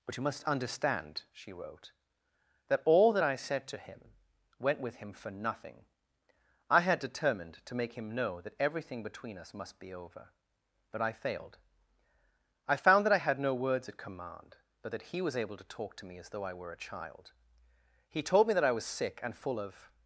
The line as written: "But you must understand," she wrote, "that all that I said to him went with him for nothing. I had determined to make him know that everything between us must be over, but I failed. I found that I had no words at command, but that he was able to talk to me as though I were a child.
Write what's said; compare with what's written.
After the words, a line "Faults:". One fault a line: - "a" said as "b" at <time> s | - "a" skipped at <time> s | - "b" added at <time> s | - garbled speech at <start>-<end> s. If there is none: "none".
"But you must understand," she wrote, "that all that I said to him went with him for nothing. I had determined to make him know that everything between us must be over, but I failed. I found that I had no words at command, but that he was able to talk to me as though I were a child. He told me that I was sick and full of
Faults:
- "He told me that I was sick and full of" added at 18.1 s